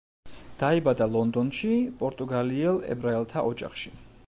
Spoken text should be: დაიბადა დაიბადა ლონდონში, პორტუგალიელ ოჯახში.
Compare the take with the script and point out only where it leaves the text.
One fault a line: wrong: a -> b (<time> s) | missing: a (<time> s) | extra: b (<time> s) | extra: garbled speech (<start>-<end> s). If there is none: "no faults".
missing: დაიბადა (1.1 s)
extra: ებრაელთა (3.0 s)